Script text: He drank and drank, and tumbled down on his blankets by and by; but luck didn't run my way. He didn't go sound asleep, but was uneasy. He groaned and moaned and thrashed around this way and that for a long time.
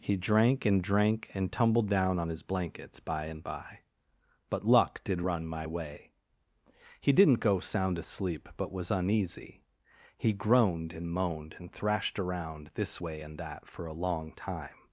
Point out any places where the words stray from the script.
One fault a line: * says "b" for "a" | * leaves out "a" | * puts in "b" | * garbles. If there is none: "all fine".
* says "did" for "didn't"